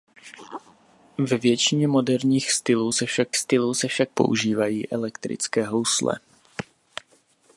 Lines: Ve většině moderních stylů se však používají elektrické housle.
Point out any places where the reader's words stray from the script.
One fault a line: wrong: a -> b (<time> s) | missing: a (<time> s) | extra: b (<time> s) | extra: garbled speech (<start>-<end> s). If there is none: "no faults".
extra: stylů se však (3.4 s)